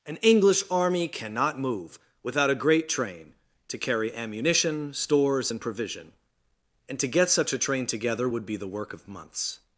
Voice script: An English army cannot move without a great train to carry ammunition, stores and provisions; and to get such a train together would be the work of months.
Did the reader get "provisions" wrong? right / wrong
wrong